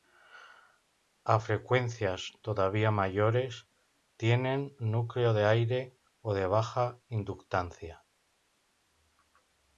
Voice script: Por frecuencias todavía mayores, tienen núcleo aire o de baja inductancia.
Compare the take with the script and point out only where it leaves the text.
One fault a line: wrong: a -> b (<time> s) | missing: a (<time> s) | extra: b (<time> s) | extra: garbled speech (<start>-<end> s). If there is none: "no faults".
wrong: Por -> A (1.2 s)
extra: de (5.3 s)